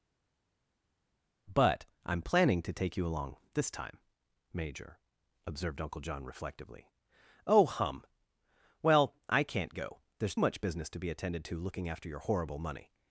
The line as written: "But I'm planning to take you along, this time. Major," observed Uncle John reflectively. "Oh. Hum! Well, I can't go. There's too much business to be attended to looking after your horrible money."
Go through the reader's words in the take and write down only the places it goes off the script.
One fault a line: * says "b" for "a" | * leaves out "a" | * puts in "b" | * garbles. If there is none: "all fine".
* leaves out "too"